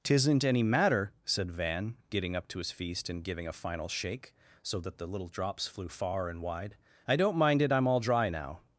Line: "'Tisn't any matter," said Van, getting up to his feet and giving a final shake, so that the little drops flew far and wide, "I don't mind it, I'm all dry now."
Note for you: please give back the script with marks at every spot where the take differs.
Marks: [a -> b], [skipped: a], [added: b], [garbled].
"'Tisn't any matter," said Van, getting up to his [feet -> feast] and giving a final shake, so that the little drops flew far and wide, "I don't mind it, I'm all dry now."